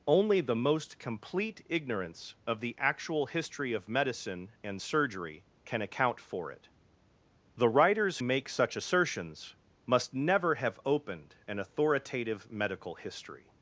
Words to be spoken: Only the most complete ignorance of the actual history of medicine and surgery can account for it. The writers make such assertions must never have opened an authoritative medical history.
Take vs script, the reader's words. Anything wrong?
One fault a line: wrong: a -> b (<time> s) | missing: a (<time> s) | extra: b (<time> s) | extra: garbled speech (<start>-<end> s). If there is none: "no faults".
no faults